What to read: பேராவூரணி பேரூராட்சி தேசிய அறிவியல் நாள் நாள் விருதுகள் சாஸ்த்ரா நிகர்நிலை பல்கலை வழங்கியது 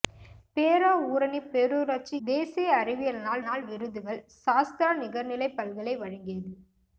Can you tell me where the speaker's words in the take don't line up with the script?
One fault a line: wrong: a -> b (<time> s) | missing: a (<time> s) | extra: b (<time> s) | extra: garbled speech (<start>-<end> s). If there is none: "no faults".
no faults